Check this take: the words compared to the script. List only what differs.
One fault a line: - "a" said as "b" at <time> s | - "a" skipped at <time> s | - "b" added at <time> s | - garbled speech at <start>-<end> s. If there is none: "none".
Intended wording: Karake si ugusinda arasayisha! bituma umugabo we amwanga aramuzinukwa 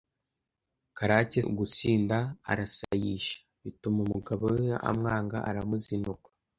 - "si" skipped at 1.4 s